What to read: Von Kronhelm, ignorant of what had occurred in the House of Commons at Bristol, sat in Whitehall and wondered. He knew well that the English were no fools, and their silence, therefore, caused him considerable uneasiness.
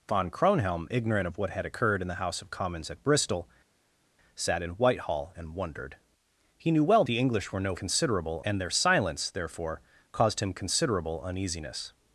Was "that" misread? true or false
true